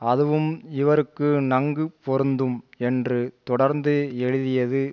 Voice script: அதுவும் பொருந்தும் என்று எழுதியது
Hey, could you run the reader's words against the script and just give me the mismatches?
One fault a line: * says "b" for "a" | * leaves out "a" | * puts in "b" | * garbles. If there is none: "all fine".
* puts in "இவருக்கு நன்கு"
* puts in "தொடர்ந்து"